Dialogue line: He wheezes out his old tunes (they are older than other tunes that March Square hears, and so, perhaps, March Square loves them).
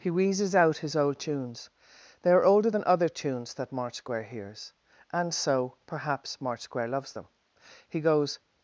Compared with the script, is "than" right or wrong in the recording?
right